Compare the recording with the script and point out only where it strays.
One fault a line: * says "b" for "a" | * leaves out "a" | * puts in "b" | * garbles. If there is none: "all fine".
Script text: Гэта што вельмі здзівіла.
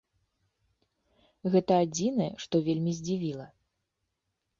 * puts in "адзінае"